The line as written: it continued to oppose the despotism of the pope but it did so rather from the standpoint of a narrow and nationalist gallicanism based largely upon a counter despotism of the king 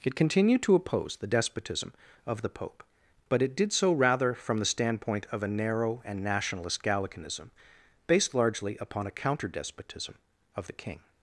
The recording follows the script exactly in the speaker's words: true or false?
true